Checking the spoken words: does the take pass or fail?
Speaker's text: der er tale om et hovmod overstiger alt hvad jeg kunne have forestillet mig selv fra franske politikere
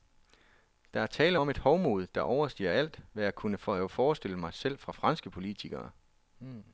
fail